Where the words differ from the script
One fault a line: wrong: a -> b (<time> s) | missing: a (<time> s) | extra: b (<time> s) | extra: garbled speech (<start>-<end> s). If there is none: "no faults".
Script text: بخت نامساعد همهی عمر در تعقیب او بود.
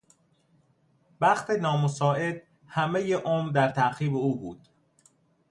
no faults